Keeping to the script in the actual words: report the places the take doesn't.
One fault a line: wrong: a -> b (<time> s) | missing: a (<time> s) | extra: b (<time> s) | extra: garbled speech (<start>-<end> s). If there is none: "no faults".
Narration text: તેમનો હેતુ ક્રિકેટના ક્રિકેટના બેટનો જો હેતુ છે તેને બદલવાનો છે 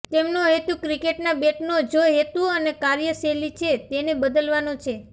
missing: ક્રિકેટના (1.4 s)
extra: અને કાર્યશૈલી (2.5 s)